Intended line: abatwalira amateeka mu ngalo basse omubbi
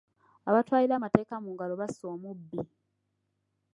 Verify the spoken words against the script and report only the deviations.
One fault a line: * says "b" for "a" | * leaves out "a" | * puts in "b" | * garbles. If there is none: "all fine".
all fine